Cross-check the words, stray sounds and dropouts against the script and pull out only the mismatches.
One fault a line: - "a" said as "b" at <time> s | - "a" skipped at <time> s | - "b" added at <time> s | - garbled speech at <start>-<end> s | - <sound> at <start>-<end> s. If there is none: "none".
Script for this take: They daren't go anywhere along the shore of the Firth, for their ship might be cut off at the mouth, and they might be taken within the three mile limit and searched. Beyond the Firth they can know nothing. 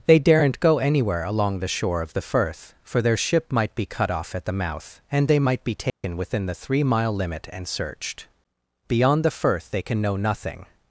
- dropout at 5.9-6.0 s